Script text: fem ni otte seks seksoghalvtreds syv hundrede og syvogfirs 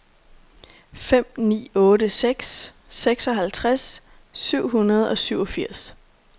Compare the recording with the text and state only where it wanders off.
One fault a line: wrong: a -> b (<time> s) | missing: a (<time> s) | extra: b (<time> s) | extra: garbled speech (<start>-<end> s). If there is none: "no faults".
no faults